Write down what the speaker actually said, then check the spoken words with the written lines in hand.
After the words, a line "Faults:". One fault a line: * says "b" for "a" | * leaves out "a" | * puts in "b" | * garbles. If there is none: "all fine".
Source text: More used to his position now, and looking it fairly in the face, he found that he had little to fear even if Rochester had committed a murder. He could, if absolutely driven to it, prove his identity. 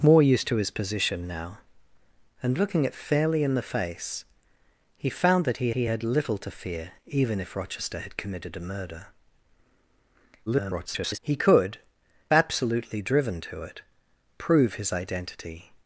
More used to his position now, and looking it fairly in the face, he found that he he had little to fear even if Rochester had committed a murder. [garbled] He could, absolutely driven to it, prove his identity.
Faults:
* puts in "he"
* garbles
* leaves out "if"